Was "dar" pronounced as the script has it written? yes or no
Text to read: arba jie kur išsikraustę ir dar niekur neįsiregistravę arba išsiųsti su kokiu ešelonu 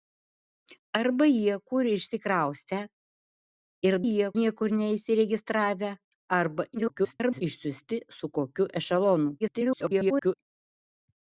no